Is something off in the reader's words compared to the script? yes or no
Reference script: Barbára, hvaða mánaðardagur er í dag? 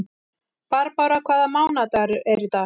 no